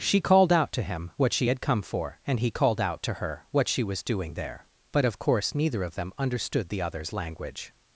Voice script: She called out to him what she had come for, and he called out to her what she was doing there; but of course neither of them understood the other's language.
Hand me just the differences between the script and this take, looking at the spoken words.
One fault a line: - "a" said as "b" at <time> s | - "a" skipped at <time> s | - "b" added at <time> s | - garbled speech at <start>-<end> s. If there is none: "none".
none